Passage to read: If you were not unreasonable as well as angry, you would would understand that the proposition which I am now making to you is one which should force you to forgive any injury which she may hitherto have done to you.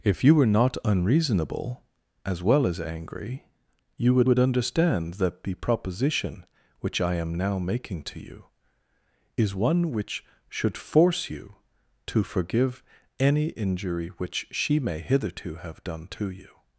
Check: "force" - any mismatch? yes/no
no